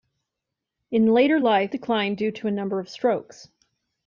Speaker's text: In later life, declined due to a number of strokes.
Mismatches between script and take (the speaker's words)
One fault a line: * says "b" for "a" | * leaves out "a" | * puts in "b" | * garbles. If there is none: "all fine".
all fine